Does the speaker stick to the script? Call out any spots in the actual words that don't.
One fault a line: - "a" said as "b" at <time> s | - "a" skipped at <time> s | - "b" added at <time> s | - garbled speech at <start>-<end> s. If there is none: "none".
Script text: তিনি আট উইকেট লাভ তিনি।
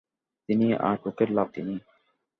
none